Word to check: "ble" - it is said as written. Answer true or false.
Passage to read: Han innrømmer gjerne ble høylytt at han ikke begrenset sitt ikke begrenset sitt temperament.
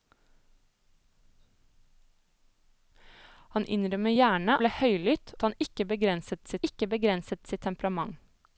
true